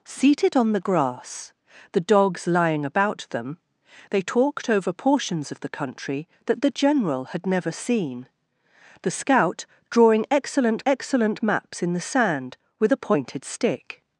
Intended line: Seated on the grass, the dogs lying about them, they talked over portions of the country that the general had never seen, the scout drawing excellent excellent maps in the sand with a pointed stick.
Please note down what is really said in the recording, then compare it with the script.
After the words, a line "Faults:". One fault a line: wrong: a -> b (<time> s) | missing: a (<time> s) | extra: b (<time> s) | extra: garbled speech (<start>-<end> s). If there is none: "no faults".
Seated on the grass, the dogs lying about them, they talked over portions of the country that the general had never seen, the scout drawing excellent excellent maps in the sand with a pointed stick.
Faults:
no faults